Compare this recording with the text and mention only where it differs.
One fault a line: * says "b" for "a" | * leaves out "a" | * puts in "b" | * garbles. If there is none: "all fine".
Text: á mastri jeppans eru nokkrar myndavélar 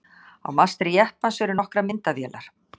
all fine